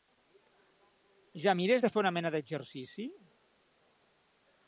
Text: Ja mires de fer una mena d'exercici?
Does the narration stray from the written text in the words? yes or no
no